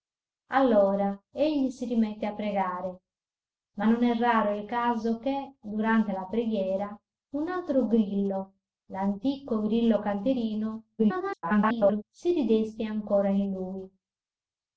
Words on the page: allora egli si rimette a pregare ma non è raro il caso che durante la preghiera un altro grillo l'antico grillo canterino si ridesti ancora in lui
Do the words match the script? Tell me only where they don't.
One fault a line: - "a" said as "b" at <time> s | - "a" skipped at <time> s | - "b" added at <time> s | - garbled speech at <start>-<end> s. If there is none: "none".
- garbled speech at 11.0-12.0 s